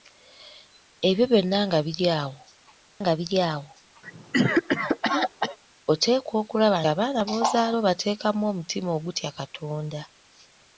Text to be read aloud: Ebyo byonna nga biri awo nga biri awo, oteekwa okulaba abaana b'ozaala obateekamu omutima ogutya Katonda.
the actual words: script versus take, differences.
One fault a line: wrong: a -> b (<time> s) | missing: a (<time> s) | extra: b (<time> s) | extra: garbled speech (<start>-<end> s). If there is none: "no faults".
no faults